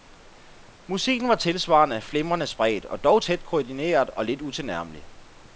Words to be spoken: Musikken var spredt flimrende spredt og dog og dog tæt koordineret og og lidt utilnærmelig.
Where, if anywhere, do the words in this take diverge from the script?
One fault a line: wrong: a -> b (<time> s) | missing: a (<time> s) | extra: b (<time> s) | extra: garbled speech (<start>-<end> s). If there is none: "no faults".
wrong: spredt -> tilsvarende (1.4 s)
missing: og dog (3.2 s)
missing: og (4.2 s)